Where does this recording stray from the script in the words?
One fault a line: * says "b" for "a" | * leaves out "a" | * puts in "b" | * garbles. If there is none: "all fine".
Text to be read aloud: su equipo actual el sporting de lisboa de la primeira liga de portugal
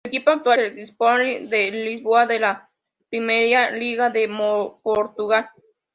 all fine